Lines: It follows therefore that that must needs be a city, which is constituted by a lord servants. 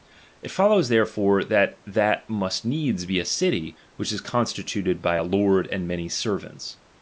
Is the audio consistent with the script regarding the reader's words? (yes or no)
no